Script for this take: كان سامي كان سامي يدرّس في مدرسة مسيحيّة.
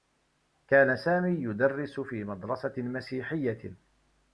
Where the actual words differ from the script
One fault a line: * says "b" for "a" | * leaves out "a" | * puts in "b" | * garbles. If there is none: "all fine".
* leaves out "كان سامي"